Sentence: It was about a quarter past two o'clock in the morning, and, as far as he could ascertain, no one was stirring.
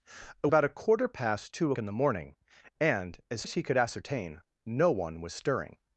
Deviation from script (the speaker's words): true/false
true